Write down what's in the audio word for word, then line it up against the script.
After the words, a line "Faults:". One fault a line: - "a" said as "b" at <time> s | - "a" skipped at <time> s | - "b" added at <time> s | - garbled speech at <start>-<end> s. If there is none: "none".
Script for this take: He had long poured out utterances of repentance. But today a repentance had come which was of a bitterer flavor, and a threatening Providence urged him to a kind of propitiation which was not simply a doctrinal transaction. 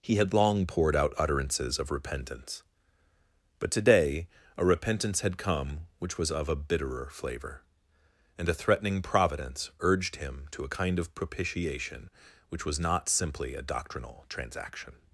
He had long poured out utterances of repentance. But today a repentance had come which was of a bitterer flavor, and a threatening Providence urged him to a kind of propitiation which was not simply a doctrinal transaction.
Faults:
none